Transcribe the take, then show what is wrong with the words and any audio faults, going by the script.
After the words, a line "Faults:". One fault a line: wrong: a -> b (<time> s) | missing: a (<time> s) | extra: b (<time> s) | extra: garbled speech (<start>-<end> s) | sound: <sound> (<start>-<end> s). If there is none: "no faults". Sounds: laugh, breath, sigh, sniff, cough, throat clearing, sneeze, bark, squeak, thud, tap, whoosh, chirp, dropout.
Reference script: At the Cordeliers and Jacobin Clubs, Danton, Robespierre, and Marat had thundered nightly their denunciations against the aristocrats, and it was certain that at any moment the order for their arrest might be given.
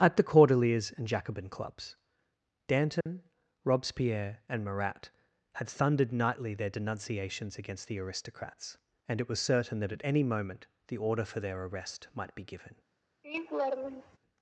At the Cordeliers and Jacobin Clubs, Danton, Robespierre, and Marat had thundered nightly their denunciations against the aristocrats, and it was certain that at any moment the order for their arrest might be given.
Faults:
sound: dropout (3.0-3.1 s)
sound: laugh (13.2-14.2 s)